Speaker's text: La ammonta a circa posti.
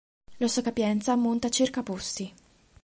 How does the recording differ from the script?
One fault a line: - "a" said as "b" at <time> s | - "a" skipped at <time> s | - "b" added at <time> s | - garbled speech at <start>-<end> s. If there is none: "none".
- "sua capienza" added at 0.5 s